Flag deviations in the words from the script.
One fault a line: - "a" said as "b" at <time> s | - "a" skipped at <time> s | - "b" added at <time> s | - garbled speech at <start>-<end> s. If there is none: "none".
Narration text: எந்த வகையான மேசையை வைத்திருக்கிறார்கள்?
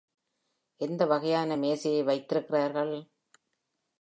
none